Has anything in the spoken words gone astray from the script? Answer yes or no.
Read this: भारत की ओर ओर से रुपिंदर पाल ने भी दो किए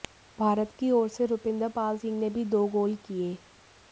yes